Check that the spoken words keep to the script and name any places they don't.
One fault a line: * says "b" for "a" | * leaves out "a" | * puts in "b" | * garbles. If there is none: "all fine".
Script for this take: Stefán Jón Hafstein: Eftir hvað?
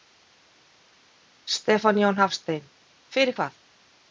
* says "Fyrir" for "Eftir"